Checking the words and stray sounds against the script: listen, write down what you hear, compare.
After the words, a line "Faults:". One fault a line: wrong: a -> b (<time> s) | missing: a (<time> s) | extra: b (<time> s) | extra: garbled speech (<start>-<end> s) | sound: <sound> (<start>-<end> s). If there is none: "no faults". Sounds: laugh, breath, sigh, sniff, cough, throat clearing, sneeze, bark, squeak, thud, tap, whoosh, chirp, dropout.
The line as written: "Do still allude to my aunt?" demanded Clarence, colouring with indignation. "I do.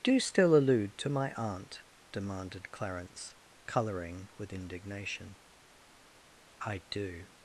"Do still allude to my aunt?" demanded Clarence, colouring with indignation. "I do.
Faults:
no faults